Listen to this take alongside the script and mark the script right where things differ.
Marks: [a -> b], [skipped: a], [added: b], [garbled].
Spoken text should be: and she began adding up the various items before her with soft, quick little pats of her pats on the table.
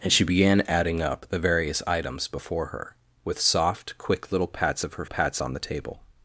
and she began adding up the various items before her with soft, quick little pats of her pats on the table.